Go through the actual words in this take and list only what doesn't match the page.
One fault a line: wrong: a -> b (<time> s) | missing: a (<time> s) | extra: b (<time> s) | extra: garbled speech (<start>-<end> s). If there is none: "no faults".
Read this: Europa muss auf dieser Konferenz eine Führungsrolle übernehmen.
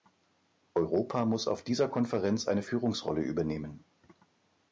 no faults